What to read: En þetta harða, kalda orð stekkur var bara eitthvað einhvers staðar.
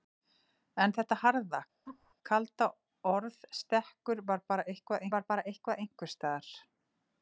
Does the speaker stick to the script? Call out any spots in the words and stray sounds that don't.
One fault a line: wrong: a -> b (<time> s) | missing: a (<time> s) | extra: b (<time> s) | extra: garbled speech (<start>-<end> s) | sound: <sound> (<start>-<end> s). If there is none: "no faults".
sound: laugh (1.9-2.1 s)
extra: var bara eitthvað (5.2 s)